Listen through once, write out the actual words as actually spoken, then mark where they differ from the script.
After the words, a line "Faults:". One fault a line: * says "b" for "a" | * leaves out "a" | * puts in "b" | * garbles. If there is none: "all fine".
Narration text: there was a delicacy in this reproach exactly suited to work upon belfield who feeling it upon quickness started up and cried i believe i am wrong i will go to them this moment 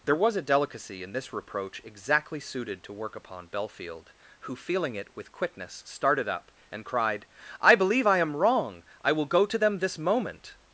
there was a delicacy in this reproach exactly suited to work upon belfield who feeling it with quickness started up and cried i believe i am wrong i will go to them this moment
Faults:
* says "with" for "upon"